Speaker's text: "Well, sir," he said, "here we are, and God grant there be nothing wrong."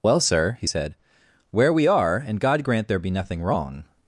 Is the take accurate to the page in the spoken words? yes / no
no